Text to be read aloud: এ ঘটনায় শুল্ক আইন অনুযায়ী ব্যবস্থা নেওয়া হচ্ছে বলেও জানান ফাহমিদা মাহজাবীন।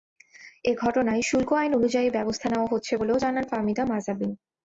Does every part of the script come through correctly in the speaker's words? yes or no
yes